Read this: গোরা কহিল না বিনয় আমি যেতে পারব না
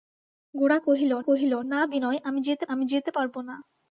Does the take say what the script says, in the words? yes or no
no